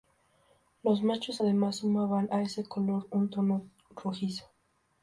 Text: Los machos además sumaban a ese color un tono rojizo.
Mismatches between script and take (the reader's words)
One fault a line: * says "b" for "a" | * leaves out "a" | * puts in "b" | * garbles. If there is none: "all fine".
all fine